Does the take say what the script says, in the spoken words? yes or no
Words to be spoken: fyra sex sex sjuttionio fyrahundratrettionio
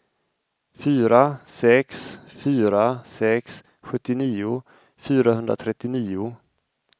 no